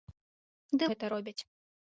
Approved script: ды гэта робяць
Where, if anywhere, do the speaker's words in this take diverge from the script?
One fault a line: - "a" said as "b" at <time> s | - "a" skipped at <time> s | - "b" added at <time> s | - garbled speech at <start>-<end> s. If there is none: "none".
none